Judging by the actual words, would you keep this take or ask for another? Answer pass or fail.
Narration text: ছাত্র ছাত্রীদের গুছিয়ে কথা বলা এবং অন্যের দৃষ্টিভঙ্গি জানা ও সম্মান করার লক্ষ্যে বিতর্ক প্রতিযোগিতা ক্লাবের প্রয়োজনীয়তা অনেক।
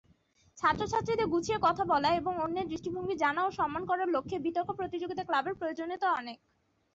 pass